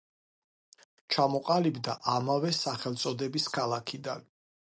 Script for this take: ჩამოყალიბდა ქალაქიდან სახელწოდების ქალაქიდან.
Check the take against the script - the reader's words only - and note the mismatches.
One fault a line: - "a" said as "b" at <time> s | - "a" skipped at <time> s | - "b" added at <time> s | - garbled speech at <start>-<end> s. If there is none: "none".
- "ქალაქიდან" said as "ამავე" at 2.1 s